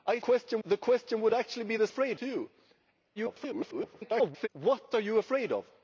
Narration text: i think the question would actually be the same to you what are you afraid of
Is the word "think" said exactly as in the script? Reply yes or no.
no